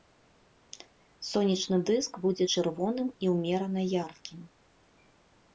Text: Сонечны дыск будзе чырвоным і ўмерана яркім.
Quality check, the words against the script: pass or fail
pass